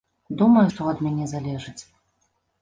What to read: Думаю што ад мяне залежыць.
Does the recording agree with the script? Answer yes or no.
yes